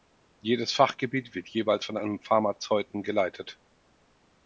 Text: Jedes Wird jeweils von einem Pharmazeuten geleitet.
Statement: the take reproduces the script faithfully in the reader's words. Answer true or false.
false